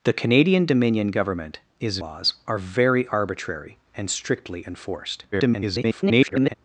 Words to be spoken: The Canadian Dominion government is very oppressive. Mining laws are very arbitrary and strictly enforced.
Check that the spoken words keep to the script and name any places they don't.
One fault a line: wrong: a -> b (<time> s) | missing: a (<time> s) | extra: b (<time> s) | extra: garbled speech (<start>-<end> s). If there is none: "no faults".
missing: very oppressive Mining (2.0 s)
extra: garbled speech (5.3-6.5 s)